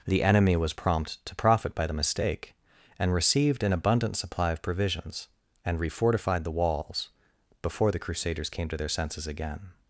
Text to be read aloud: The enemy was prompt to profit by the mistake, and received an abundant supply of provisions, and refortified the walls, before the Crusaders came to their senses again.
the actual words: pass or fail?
pass